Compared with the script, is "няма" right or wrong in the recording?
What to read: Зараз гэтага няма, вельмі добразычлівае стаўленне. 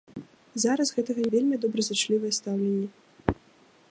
wrong